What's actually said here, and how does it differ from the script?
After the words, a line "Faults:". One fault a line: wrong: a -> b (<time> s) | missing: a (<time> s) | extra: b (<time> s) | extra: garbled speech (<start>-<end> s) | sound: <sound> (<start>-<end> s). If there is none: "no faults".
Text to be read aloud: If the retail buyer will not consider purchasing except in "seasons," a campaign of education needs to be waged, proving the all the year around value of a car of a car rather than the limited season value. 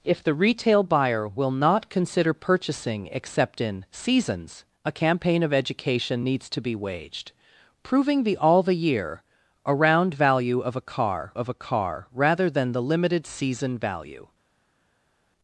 If the retail buyer will not consider purchasing except in "seasons," a campaign of education needs to be waged, proving the all the year around value of a car of a car rather than the limited season value.
Faults:
no faults